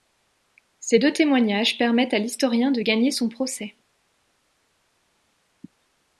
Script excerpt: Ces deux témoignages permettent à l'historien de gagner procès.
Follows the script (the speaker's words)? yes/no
no